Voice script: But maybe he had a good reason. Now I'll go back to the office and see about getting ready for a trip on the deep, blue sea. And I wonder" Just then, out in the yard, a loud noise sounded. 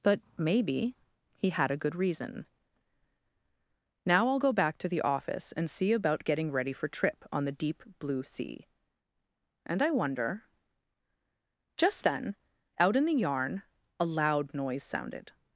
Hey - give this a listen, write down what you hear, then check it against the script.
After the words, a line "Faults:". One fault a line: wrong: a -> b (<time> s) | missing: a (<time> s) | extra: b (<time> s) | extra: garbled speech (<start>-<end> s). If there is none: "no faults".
But maybe he had a good reason. Now I'll go back to the office and see about getting ready for trip on the deep, blue sea. And I wonder" Just then, out in the yarn, a loud noise sounded.
Faults:
missing: a (6.9 s)
wrong: yard -> yarn (13.1 s)